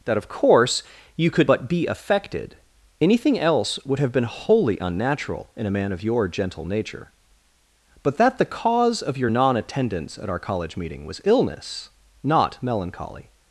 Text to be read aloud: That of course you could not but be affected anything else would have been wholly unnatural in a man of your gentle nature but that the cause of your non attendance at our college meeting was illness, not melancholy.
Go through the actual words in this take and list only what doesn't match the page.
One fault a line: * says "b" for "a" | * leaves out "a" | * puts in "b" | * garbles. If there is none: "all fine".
* leaves out "not"